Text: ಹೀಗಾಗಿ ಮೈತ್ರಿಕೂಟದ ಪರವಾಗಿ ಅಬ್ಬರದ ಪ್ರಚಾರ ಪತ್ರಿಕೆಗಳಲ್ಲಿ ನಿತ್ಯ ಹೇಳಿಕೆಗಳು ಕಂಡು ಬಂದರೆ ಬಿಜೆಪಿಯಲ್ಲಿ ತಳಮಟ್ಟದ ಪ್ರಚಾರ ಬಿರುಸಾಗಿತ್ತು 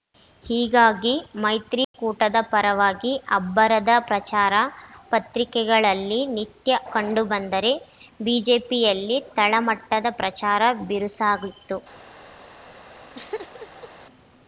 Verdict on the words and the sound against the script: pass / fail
fail